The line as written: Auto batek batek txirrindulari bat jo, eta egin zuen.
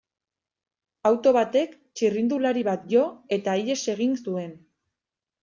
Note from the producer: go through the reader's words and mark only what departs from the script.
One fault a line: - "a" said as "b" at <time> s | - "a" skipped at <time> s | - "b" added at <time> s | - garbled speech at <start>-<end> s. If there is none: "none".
- "batek" skipped at 1.8 s
- "ihes" added at 3.6 s